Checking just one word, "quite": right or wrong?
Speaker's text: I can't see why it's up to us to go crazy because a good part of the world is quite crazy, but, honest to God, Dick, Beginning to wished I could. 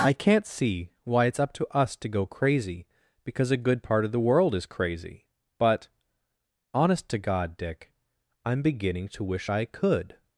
wrong